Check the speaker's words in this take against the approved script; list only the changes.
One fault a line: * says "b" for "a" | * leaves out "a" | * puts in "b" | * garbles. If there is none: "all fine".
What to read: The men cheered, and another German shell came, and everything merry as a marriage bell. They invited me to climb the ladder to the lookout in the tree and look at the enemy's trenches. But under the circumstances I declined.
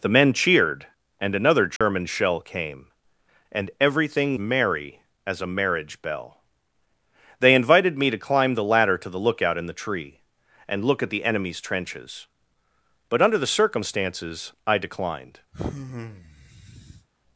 all fine